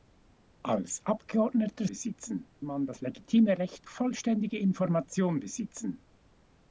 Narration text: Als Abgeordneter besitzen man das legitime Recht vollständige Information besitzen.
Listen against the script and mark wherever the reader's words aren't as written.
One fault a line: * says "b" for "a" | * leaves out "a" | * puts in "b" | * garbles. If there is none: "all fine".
all fine